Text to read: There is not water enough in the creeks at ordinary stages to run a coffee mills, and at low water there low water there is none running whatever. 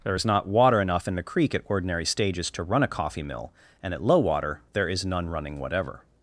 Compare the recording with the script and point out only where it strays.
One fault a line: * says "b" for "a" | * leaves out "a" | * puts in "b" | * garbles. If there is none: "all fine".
* says "creek" for "creeks"
* says "mill" for "mills"
* leaves out "low water there"